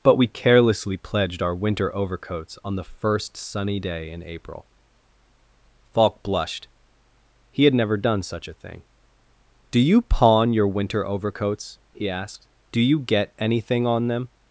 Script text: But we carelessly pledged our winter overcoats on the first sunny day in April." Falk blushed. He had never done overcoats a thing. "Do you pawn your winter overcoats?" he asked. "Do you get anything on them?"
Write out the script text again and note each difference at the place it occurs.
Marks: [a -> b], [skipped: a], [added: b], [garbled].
But we carelessly pledged our winter overcoats on the first sunny day in April." Falk blushed. He had never done [overcoats -> such] a thing. "Do you pawn your winter overcoats?" he asked. "Do you get anything on them?"